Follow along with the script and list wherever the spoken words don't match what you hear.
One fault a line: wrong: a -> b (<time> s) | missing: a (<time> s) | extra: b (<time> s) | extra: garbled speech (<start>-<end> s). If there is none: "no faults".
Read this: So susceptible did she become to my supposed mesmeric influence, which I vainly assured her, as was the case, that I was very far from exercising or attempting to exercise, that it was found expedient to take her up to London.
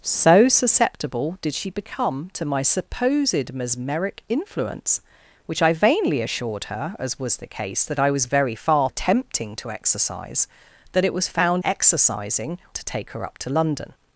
missing: from exercising or (8.9 s)
wrong: expedient -> exercising (11.6 s)